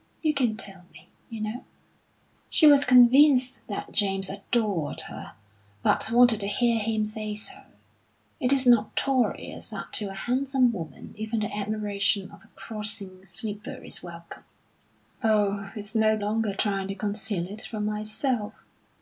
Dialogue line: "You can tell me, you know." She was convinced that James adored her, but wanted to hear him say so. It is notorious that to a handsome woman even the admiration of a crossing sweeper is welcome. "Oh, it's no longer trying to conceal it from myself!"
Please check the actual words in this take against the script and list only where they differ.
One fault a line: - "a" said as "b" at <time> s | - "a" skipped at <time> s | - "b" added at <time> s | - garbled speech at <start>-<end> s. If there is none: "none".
none